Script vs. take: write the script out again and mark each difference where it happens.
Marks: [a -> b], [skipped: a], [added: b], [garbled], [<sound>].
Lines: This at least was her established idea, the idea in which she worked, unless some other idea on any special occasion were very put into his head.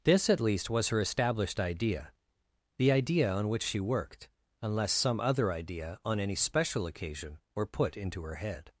This at least was her established idea, the idea [in -> on] which she worked, unless some other idea on any special occasion were [skipped: very] put into [his -> her] head.